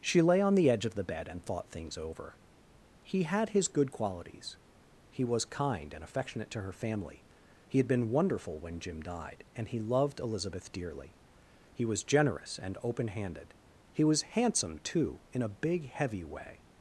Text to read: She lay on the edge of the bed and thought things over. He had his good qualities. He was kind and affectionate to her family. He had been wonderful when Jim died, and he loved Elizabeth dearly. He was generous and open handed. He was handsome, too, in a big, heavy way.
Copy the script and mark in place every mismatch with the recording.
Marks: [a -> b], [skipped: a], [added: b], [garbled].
She lay on the edge of the bed and thought things over. He had his good qualities. He was kind and affectionate to her family. He had been wonderful when Jim died, and he loved Elizabeth dearly. He was generous and open handed. He was handsome, too, in a big, heavy way.